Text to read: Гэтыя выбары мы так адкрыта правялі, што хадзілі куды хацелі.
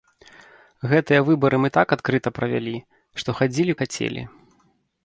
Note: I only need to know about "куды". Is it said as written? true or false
false